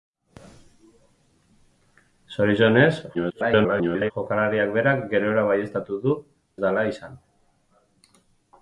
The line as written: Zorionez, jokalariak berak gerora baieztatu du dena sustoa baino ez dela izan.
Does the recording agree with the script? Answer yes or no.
no